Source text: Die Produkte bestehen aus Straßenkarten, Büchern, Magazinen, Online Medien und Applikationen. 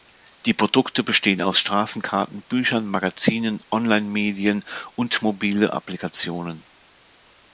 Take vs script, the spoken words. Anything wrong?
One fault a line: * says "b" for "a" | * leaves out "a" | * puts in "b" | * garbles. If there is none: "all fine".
* puts in "mobile"